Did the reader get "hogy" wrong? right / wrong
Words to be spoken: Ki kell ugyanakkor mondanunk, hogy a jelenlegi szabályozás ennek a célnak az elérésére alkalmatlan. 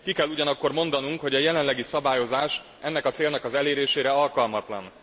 right